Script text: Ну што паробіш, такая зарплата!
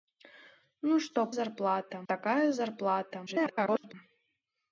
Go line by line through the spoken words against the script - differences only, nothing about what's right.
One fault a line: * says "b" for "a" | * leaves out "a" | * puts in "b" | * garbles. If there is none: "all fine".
* says "зарплата" for "паробіш"
* garbles